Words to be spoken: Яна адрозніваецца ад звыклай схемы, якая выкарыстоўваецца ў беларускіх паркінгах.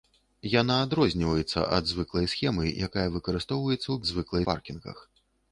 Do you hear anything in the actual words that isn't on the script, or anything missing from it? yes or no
yes